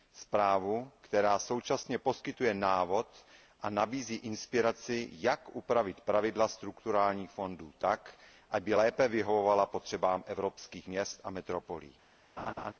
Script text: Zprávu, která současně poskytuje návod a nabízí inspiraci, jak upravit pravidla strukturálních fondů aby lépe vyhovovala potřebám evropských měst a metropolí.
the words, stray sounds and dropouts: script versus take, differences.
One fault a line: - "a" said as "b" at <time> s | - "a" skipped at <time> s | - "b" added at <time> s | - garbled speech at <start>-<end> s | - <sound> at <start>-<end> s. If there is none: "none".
- "tak" added at 7.8 s
- laugh at 12.4-12.7 s